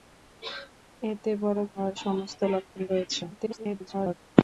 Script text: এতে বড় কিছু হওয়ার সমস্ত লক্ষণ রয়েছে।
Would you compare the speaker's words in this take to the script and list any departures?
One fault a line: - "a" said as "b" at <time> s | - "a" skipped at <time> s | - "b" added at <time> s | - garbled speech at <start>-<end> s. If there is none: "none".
- "কিছু" skipped at 1.6 s
- garbled speech at 3.3-4.1 s